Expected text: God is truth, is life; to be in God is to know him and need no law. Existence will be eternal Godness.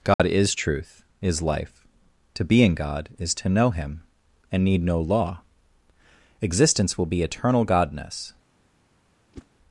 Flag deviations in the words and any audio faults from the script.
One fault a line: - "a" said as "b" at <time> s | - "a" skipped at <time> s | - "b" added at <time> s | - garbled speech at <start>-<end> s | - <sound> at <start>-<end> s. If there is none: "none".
- dropout at 0.1-0.2 s
- whoosh at 9.3-9.5 s